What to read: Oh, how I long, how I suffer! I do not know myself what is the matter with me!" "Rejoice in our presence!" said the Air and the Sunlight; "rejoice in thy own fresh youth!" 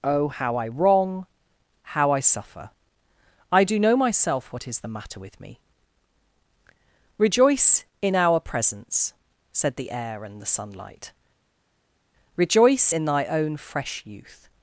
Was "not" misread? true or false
true